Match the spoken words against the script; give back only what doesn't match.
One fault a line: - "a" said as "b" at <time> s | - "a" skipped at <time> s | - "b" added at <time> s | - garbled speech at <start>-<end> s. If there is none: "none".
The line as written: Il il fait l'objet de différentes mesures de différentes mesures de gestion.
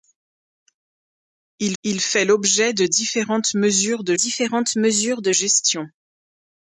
none